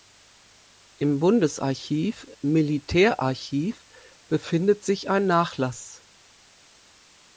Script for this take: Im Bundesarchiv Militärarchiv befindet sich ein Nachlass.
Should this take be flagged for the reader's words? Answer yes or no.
no